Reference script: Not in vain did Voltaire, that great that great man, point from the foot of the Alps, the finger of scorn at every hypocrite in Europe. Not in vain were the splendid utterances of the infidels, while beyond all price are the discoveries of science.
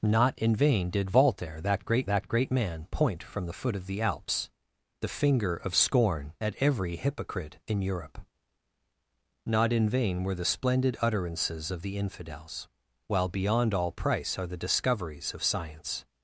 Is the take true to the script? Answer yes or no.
yes